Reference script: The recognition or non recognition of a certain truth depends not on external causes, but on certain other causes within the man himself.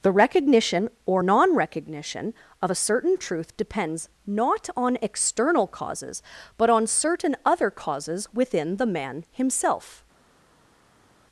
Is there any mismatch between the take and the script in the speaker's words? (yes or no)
no